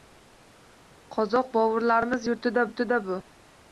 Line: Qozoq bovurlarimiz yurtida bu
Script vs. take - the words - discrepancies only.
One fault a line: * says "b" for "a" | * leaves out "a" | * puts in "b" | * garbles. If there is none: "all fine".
* puts in "yurtida"